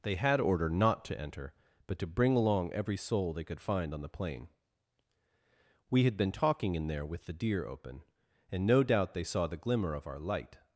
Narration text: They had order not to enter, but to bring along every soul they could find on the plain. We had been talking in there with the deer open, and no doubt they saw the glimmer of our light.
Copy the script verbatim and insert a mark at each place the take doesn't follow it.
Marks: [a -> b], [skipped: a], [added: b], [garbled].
They had order not to enter, but to bring along every soul they could find on the plain. We had been talking in there with the deer open, and no doubt they saw the glimmer of our light.